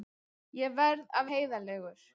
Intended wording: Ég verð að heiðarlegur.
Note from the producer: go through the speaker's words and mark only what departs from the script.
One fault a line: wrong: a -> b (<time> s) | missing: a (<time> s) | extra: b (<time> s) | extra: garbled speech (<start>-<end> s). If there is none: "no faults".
no faults